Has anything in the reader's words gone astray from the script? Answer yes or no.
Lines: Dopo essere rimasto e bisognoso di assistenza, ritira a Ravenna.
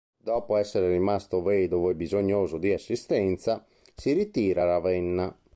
yes